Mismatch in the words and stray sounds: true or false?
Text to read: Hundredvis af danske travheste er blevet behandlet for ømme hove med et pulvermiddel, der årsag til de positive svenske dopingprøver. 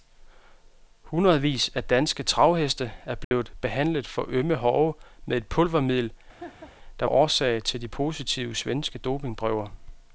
true